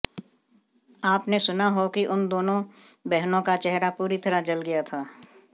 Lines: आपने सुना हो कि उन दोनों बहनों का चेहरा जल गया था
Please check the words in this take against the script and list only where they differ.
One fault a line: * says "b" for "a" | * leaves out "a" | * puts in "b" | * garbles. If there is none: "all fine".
* puts in "पूरी तरह"